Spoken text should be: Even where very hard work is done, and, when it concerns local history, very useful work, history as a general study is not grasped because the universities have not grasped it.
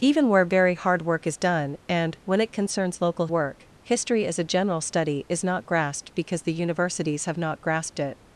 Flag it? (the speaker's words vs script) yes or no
yes